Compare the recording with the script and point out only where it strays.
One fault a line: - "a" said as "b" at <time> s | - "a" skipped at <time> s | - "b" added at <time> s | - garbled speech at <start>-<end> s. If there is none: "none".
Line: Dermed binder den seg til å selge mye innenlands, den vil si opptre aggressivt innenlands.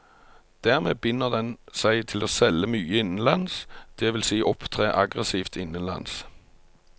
- "den" said as "det" at 4.0 s